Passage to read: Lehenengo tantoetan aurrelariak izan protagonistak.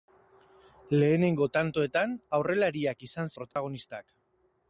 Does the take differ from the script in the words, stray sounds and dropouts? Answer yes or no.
yes